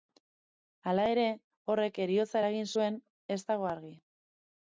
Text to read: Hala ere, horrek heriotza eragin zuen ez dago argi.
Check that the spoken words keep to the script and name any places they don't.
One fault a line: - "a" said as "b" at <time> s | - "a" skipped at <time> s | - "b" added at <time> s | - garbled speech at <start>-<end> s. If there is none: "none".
none